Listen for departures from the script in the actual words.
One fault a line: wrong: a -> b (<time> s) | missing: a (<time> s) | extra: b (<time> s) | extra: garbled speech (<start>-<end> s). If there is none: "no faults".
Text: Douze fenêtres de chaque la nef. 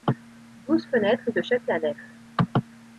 no faults